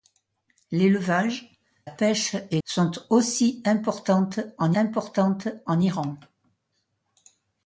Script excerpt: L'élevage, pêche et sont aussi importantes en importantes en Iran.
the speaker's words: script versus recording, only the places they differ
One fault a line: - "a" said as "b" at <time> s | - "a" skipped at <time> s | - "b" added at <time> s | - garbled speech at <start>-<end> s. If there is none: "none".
none